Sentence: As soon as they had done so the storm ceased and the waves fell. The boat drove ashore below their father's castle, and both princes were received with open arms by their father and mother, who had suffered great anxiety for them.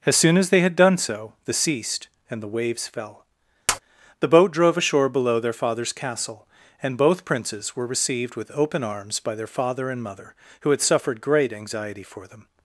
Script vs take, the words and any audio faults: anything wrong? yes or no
yes